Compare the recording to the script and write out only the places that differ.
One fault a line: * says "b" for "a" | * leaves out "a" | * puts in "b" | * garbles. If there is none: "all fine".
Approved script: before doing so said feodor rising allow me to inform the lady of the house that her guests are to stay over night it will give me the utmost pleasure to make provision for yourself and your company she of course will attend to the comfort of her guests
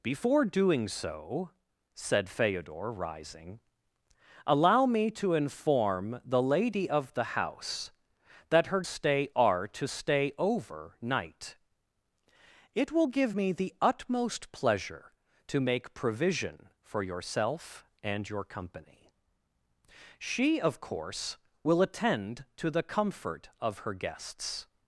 * says "stay" for "guests"